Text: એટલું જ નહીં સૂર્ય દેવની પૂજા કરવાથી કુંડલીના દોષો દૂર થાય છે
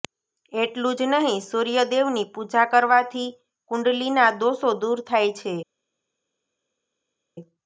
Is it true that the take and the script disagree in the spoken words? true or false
false